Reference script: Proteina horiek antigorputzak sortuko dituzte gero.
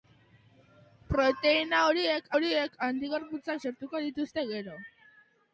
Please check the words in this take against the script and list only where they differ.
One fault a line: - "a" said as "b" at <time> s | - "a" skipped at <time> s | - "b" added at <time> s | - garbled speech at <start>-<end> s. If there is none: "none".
- "horiek" added at 2.4 s